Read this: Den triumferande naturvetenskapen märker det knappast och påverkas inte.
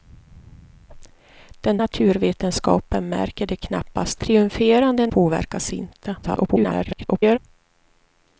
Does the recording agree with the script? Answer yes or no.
no